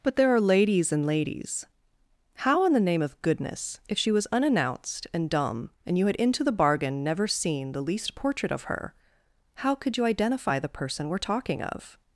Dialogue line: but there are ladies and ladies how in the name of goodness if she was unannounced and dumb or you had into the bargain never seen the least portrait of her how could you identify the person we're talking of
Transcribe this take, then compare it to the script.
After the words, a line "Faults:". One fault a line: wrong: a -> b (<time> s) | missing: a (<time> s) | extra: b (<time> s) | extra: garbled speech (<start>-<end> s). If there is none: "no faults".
but there are ladies and ladies how in the name of goodness if she was unannounced and dumb and you had into the bargain never seen the least portrait of her how could you identify the person we're talking of
Faults:
wrong: or -> and (5.8 s)